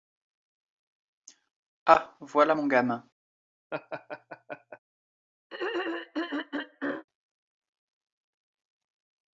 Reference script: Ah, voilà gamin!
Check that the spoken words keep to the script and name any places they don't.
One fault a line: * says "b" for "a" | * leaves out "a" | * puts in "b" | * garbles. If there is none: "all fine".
* puts in "mon"